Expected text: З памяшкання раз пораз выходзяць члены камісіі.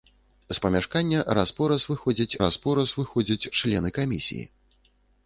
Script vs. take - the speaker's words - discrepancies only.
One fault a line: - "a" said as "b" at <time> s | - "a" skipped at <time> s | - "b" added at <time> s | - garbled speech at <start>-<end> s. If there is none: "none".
- "раз пораз выходзяць" added at 2.4 s